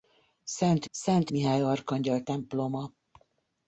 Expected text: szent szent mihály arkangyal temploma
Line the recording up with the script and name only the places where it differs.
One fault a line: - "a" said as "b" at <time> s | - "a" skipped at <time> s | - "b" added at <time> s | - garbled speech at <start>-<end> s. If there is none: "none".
none